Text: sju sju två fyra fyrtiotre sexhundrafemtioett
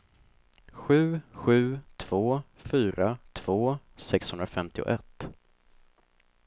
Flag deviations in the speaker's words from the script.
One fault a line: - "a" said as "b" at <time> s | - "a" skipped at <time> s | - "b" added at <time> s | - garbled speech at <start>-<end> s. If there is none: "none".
- "fyrtiotre" said as "två" at 3.3 s